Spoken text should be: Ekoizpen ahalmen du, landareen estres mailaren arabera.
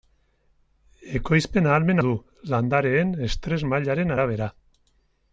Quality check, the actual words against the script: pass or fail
pass